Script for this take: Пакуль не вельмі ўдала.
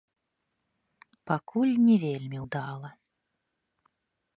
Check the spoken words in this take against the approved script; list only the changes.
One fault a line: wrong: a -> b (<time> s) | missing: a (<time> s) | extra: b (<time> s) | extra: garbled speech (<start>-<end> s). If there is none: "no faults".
no faults